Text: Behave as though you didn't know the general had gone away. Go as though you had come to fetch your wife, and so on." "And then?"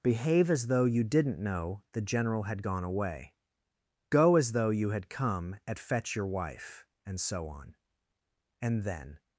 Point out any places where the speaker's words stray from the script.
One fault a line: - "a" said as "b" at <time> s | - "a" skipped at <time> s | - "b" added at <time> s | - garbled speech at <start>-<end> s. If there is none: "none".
- "to" said as "at" at 5.7 s